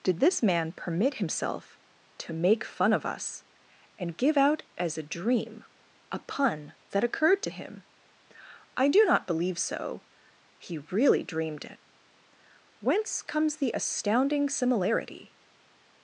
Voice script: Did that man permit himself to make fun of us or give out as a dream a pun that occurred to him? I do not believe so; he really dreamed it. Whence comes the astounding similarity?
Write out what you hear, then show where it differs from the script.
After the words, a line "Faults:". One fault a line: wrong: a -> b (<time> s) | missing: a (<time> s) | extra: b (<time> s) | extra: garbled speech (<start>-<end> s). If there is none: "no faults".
Did this man permit himself to make fun of us and give out as a dream a pun that occurred to him? I do not believe so; he really dreamed it. Whence comes the astounding similarity?
Faults:
wrong: that -> this (0.2 s)
wrong: or -> and (4.0 s)